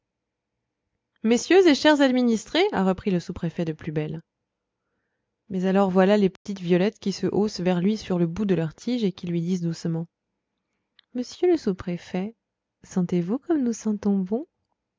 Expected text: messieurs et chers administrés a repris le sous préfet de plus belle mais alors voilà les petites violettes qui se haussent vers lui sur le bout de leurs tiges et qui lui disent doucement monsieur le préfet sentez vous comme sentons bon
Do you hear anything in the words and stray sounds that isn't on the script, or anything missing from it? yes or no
yes